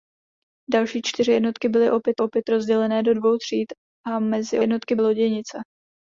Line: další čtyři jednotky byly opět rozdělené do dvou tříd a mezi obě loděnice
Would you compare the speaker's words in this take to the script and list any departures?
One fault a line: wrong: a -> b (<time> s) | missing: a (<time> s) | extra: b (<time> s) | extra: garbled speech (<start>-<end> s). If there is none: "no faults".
extra: opět (2.2 s)
wrong: obě -> jednotky (4.6 s)